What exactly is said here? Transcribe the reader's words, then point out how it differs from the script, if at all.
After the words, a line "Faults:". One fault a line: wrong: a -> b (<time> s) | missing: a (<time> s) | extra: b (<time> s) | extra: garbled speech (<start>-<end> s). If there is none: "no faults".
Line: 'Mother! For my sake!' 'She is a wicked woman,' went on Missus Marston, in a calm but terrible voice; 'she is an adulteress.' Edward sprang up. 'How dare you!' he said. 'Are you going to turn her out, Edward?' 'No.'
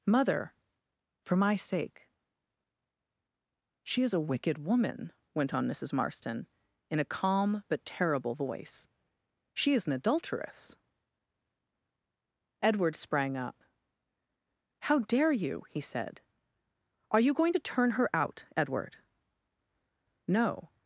'Mother! For my sake!' 'She is a wicked woman,' went on Missus Marston, in a calm but terrible voice; 'she is an adulteress.' Edward sprang up. 'How dare you!' he said. 'Are you going to turn her out, Edward?' 'No.'
Faults:
no faults